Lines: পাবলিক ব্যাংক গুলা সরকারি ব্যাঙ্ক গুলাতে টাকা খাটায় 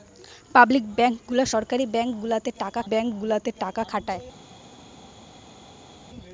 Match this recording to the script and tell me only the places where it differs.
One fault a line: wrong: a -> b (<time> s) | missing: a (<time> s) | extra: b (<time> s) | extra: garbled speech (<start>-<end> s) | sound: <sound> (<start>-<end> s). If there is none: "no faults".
extra: ব্যাঙ্ক গুলাতে টাকা (2.8 s)